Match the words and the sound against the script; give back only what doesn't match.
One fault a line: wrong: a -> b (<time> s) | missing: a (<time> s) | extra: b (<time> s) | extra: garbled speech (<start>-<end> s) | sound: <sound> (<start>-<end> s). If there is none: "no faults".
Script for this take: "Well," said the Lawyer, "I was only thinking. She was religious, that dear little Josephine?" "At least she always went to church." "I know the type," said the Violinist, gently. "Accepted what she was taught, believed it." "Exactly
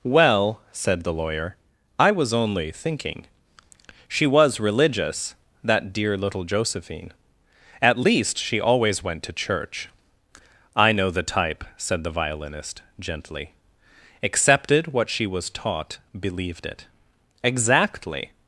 no faults